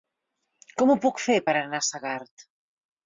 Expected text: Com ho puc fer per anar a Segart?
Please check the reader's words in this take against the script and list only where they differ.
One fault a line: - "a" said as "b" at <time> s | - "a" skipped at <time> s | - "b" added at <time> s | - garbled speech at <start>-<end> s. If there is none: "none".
none